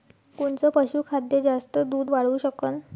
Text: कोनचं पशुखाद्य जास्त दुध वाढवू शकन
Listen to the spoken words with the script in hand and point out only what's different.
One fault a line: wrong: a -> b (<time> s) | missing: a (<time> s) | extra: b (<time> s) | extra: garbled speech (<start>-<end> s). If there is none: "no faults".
no faults